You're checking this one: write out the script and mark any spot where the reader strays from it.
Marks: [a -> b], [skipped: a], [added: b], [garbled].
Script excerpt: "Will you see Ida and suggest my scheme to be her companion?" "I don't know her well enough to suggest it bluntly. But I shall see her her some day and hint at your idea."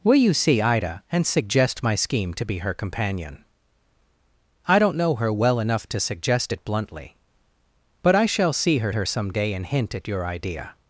"Will you see Ida and suggest my scheme to be her companion?" "I don't know her well enough to suggest it bluntly. But I shall see her her some day and hint at your idea."